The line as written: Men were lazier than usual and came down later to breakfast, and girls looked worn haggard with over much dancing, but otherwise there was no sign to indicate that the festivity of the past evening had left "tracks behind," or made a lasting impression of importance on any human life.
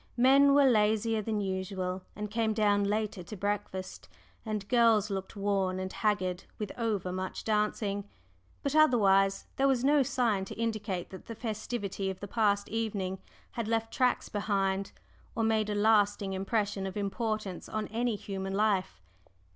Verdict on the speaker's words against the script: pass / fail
fail